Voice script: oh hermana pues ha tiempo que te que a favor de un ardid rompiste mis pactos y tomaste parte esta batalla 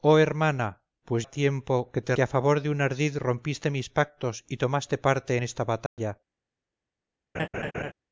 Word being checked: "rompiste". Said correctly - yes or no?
yes